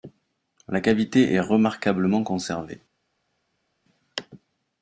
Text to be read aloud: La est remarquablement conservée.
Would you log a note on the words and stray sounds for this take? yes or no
yes